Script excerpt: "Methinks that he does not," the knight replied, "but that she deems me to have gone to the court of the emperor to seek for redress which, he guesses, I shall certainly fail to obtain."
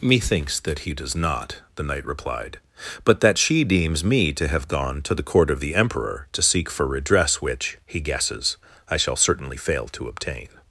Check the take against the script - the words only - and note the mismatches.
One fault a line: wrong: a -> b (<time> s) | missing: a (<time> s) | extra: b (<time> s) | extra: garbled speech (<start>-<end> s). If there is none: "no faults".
no faults